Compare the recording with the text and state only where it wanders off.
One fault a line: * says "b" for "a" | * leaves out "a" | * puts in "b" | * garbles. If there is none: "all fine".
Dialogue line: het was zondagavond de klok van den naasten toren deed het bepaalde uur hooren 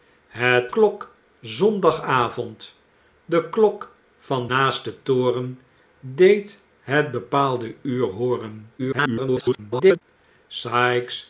* says "klok" for "was"
* leaves out "den"
* garbles